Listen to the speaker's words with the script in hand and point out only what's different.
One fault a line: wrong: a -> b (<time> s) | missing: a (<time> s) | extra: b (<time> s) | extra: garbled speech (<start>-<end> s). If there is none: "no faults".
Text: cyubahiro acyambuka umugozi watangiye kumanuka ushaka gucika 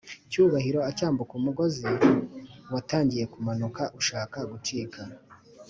no faults